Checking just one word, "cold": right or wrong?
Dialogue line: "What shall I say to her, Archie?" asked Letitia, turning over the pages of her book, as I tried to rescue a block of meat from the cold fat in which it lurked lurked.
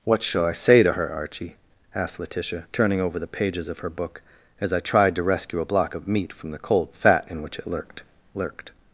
right